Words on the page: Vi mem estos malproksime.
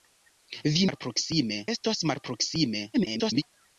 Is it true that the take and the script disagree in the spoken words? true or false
true